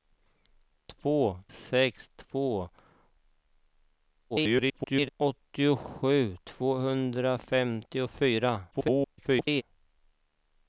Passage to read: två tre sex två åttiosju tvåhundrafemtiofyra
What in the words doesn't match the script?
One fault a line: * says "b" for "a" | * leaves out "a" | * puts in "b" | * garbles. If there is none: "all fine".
* leaves out "tre"
* garbles
* garbles